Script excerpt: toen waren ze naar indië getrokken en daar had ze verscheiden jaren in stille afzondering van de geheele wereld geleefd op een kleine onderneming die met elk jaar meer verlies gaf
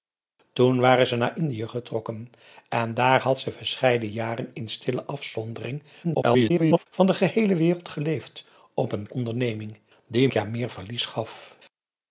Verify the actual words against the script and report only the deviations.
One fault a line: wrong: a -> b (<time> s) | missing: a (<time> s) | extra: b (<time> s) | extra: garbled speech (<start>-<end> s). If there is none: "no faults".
extra: garbled speech (6.0-6.9 s)
missing: kleine (9.1 s)
missing: met elk (10.3 s)